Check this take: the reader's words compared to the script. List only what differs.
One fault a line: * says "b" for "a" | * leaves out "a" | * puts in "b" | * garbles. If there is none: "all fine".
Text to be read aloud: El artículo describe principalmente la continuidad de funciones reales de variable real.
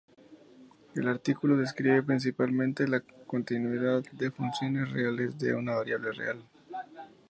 * puts in "una"